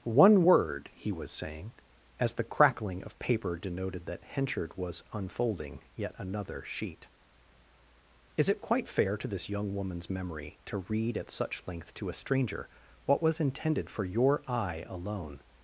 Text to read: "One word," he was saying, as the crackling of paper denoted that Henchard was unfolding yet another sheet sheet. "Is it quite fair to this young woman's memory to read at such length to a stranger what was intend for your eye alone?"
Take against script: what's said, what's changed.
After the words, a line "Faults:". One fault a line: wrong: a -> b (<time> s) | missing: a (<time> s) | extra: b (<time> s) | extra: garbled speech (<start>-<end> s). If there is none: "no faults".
"One word," he was saying, as the crackling of paper denoted that Henchard was unfolding yet another sheet. "Is it quite fair to this young woman's memory to read at such length to a stranger what was intended for your eye alone?"
Faults:
missing: sheet (7.1 s)
wrong: intend -> intended (13.4 s)